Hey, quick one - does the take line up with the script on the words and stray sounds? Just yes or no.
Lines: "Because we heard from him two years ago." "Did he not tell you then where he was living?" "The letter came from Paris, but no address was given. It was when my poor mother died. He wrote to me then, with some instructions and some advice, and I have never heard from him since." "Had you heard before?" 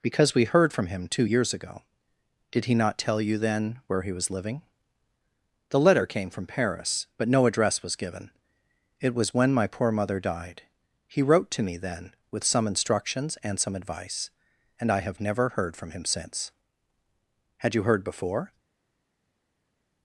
yes